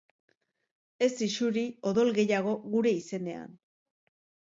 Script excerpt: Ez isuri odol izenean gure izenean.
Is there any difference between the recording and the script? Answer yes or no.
yes